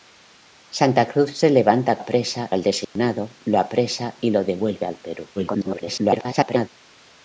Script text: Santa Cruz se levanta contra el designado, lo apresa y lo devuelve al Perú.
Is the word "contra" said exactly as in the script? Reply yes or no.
no